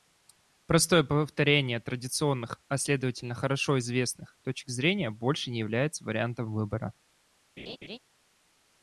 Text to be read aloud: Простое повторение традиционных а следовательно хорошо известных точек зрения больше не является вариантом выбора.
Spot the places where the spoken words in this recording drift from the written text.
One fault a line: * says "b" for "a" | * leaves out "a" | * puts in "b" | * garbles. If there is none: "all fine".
all fine